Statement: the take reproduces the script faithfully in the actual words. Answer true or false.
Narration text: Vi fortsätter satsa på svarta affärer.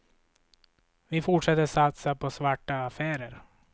true